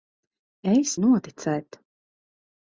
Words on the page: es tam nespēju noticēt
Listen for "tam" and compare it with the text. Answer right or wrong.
wrong